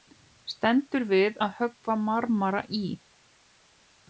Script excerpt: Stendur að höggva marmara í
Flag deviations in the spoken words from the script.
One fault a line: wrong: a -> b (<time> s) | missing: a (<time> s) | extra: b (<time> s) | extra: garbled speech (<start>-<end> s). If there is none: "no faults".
extra: við (1.1 s)